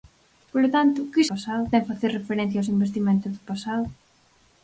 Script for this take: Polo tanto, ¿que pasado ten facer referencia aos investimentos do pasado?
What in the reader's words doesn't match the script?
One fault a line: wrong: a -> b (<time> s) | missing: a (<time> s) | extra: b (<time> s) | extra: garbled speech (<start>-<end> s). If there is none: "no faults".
no faults